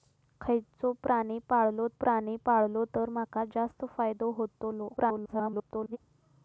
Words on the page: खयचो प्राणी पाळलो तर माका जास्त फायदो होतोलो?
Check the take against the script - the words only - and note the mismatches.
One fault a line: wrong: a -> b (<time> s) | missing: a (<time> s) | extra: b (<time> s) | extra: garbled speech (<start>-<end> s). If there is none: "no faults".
extra: प्राणी पाळलो (2.0 s)
extra: garbled speech (5.0-6.0 s)